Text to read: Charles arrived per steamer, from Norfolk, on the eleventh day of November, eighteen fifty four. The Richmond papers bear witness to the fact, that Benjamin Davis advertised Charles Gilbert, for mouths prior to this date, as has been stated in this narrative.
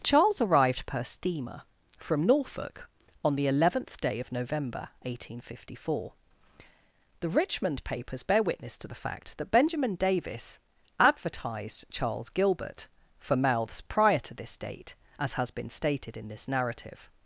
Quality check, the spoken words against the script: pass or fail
pass